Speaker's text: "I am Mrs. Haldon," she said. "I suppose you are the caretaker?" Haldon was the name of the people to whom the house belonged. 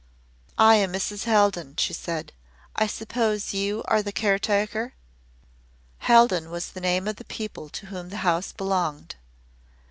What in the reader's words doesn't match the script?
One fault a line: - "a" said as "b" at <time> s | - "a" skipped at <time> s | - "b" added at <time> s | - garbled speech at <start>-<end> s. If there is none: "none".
none